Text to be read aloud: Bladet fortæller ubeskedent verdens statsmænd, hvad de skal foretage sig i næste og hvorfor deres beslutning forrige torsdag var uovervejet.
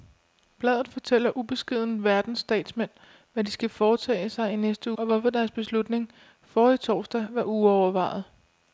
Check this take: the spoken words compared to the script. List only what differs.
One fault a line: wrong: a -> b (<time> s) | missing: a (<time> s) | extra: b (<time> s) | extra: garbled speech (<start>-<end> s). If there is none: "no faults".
no faults